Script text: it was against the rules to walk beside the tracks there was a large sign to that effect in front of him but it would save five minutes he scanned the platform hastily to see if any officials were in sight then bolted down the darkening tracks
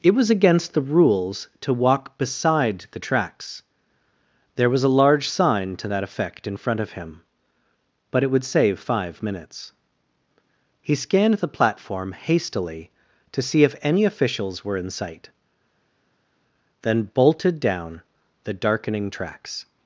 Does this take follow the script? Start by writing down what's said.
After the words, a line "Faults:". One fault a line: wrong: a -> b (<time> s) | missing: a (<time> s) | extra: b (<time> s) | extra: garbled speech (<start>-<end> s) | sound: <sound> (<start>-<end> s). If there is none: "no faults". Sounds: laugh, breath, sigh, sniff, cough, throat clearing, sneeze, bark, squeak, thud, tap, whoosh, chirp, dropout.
it was against the rules to walk beside the tracks there was a large sign to that effect in front of him but it would save five minutes he scanned the platform hastily to see if any officials were in sight then bolted down the darkening tracks
Faults:
no faults